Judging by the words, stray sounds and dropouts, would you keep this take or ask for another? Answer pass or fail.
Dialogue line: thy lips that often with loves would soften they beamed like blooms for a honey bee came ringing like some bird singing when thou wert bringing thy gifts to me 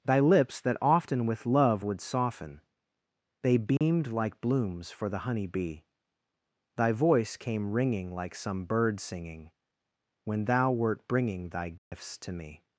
fail